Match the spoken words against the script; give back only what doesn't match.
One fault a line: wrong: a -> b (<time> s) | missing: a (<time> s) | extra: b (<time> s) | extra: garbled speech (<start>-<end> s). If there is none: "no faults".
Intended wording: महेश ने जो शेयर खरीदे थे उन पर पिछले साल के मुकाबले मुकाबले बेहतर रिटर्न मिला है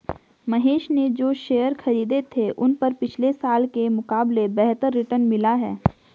missing: मुकाबले (4.5 s)